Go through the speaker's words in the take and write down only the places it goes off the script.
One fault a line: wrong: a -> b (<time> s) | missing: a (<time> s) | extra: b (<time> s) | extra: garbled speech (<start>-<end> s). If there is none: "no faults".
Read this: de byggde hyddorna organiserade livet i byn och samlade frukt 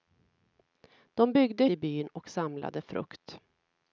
missing: hyddorna organiserade livet (1.6 s)